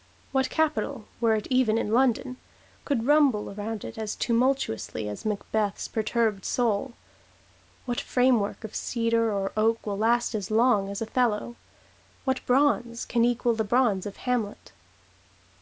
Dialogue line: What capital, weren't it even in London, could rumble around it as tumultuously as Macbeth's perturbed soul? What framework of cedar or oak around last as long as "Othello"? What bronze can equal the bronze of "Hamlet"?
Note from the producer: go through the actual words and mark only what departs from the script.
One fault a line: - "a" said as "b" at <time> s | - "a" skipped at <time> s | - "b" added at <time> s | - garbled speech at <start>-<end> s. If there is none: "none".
- "weren't" said as "were" at 1.2 s
- "around" said as "will" at 9.9 s